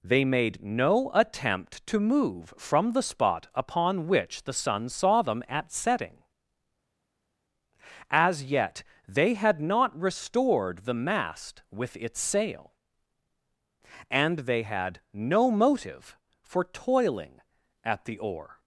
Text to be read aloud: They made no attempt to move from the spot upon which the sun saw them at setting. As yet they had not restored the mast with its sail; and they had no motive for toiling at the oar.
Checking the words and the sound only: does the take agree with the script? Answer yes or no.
yes